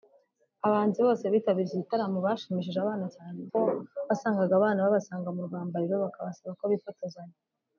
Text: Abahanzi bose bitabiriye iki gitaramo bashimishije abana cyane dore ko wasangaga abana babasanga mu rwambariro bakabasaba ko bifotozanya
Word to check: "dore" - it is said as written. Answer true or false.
false